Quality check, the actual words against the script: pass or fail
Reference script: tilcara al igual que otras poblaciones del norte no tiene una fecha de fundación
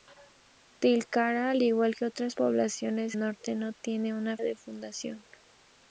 fail